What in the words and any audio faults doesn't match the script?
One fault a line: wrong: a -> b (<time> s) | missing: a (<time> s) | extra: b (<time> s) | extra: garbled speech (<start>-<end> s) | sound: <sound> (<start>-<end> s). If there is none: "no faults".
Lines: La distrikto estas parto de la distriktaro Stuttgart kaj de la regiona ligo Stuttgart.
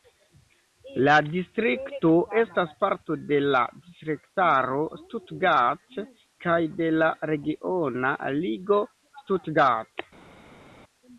no faults